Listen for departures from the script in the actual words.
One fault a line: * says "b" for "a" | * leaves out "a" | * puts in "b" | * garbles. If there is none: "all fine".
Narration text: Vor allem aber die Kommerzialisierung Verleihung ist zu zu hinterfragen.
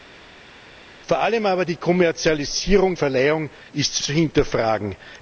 all fine